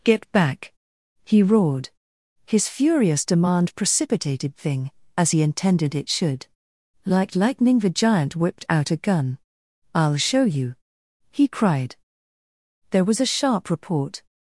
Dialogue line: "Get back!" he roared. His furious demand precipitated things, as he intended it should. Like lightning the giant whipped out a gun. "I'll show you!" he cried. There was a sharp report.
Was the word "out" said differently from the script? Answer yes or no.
no